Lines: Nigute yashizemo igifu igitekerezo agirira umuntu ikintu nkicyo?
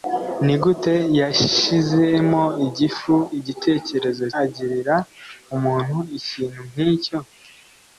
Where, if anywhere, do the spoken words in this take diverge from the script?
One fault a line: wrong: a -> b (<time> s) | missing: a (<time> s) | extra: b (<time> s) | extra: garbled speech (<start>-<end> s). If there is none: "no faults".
no faults